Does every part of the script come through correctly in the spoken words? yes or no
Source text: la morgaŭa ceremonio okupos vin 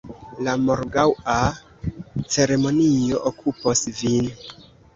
yes